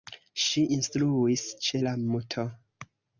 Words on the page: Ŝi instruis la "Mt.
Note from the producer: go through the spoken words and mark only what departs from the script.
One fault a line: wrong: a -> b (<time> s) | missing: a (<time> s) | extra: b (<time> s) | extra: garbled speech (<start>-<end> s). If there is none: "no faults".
extra: ĉe (1.7 s)